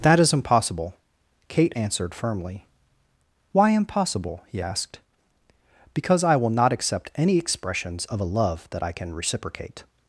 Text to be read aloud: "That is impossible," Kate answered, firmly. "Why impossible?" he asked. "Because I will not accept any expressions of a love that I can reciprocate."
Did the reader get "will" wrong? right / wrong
right